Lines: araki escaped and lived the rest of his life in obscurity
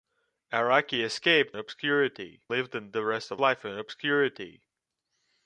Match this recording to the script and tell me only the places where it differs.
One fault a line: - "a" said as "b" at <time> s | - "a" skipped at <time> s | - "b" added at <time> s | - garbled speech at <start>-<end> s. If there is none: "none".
- "and" said as "obscurity" at 1.6 s
- "his" skipped at 3.4 s